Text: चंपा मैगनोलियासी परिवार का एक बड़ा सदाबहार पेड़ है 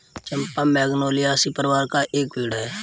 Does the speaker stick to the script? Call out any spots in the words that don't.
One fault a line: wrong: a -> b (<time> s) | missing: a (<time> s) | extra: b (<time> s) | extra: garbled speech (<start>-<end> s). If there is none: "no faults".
missing: बड़ा सदाबहार (2.3 s)